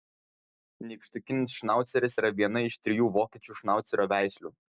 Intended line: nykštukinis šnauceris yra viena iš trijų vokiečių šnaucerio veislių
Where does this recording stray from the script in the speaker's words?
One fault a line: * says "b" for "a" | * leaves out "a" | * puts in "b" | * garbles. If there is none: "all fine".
all fine